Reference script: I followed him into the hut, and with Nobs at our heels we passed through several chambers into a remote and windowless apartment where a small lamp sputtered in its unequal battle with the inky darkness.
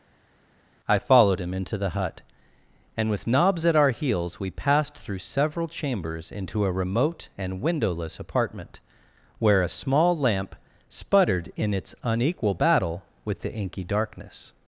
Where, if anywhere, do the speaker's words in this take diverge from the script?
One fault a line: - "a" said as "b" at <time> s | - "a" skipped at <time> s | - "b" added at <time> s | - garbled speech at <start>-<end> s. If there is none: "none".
none